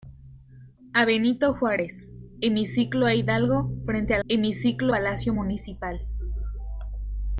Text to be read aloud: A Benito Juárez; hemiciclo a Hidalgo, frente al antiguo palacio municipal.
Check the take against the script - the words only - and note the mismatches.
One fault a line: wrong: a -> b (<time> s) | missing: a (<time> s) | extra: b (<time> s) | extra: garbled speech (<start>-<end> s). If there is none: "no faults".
wrong: antiguo -> hemiciclo (4.3 s)